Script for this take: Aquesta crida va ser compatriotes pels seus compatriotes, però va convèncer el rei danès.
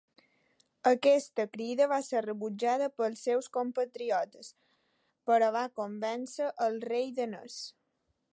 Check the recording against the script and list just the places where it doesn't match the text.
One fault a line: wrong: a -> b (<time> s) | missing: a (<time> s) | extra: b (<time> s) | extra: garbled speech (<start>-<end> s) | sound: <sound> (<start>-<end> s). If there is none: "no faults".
wrong: compatriotes -> rebutjada (2.3 s)